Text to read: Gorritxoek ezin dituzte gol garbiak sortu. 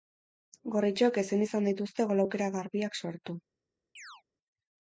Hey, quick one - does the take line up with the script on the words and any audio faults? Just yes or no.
no